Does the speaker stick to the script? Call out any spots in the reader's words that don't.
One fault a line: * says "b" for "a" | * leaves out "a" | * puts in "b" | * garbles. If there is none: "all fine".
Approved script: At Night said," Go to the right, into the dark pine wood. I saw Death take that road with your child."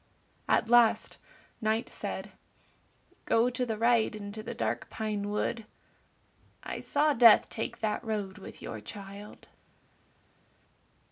* puts in "last"